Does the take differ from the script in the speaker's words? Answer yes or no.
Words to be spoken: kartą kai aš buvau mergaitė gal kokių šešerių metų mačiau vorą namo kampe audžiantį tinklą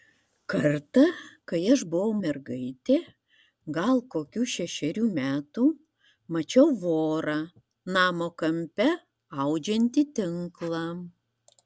no